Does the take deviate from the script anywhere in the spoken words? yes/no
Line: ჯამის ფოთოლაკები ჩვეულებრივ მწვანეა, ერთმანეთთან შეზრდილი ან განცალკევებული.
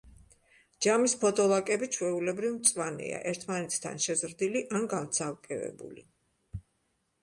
no